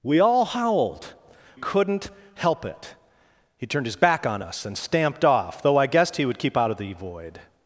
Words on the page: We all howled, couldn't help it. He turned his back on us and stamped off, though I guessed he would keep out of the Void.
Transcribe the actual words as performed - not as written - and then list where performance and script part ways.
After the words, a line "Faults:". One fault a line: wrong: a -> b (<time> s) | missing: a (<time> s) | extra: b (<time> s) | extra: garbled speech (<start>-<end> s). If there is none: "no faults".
We all howled, couldn't help it. He turned his back on us and stamped off, though I guessed he would keep out of the Void.
Faults:
no faults